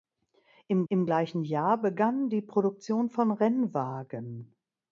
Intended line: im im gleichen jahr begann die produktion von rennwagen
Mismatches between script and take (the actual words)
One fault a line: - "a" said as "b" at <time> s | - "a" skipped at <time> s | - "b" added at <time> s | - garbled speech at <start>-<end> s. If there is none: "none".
none